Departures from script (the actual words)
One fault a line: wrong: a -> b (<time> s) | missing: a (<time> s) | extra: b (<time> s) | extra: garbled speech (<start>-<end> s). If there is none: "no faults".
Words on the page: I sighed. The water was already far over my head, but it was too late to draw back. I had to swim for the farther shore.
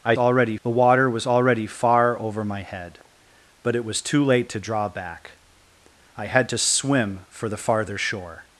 wrong: sighed -> already (0.2 s)